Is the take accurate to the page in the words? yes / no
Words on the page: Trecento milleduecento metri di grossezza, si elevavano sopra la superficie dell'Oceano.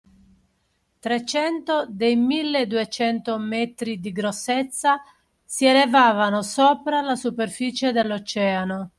no